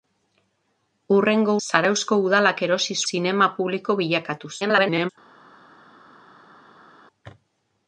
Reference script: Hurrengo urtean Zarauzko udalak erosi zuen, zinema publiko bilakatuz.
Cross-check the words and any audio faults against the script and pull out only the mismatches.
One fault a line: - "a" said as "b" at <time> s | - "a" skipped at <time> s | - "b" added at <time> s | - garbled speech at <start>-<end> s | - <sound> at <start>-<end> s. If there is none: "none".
- "urtean" skipped at 1.5 s
- "zuen" skipped at 3.0 s
- garbled speech at 4.6-5.1 s